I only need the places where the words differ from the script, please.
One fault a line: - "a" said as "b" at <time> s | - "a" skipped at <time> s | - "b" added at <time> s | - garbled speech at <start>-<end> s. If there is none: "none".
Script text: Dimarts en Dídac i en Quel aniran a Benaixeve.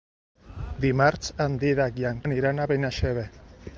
- "Quel" skipped at 2.2 s